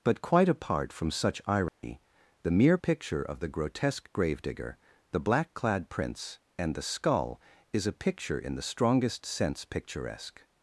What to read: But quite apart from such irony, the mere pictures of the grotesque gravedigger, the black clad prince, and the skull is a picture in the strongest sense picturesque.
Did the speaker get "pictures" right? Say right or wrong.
wrong